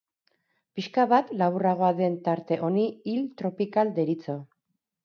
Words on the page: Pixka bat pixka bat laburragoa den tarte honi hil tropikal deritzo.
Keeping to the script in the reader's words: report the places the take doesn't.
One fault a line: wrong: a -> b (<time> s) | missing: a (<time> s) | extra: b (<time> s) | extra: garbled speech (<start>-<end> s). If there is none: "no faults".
missing: pixka bat (1.3 s)